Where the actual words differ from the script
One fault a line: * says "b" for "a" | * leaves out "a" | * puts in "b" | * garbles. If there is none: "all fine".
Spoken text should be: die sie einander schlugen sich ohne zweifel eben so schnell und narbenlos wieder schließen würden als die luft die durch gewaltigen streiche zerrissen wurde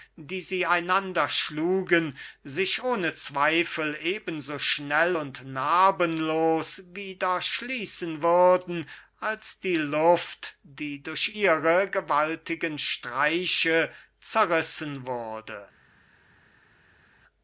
* puts in "ihre"